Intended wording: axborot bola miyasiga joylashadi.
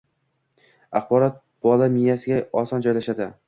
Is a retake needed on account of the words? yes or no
yes